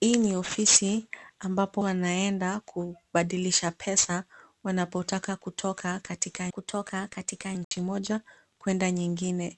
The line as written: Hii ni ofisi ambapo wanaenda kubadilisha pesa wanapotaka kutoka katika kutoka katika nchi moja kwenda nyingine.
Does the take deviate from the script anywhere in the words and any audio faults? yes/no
yes